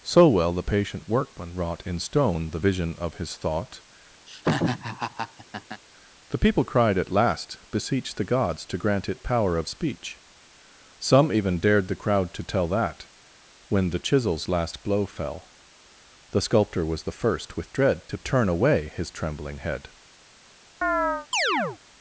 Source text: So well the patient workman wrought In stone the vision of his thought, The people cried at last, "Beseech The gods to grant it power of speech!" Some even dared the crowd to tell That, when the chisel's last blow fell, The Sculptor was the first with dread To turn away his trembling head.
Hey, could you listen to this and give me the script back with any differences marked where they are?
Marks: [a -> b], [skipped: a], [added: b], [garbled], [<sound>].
So well the patient workman wrought In stone the vision of his thought, [laugh] The people cried at last, "Beseech The gods to grant it power of speech!" Some even dared the crowd to tell That, when the chisel's last blow fell, The Sculptor was the first with dread To turn away his trembling head. [chirp]